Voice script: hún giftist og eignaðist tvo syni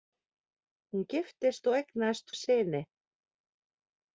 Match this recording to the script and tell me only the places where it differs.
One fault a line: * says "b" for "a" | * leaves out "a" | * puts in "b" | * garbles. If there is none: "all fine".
* leaves out "tvo"